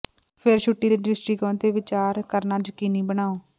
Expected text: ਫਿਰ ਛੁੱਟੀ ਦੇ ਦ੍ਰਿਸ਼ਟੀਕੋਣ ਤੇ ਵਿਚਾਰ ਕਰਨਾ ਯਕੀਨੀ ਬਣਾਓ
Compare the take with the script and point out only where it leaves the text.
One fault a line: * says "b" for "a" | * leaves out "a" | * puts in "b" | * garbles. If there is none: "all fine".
all fine